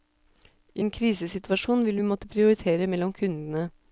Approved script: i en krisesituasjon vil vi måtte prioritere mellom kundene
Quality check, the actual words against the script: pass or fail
pass